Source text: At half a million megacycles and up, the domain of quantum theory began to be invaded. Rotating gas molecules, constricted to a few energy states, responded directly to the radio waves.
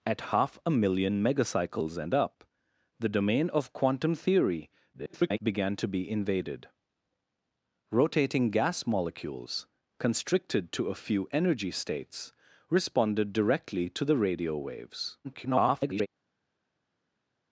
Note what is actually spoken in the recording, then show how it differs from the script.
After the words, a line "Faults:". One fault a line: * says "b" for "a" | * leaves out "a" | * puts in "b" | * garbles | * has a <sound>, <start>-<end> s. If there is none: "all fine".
At half a million megacycles and up, the domain of quantum theory [garbled] began to be invaded. Rotating gas molecules, constricted to a few energy states, responded directly to the radio waves. [garbled]
Faults:
* garbles
* garbles